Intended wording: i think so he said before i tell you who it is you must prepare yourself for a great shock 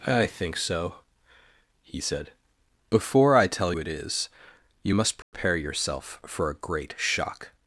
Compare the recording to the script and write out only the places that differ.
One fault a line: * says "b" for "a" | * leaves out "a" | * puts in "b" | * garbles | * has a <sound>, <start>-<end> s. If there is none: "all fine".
* leaves out "you who"
* has a dropout, 5.2-5.3 s